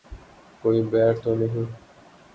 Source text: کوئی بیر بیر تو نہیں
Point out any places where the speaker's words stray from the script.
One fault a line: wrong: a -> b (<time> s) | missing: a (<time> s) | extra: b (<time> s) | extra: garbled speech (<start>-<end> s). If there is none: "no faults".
missing: بیر (1.1 s)